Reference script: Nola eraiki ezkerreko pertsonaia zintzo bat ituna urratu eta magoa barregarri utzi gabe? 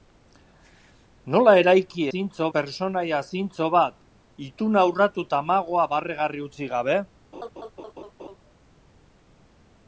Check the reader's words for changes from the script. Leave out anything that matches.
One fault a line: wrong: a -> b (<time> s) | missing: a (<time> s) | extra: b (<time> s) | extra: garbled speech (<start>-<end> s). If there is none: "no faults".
wrong: ezkerreko -> zintzo (2.1 s)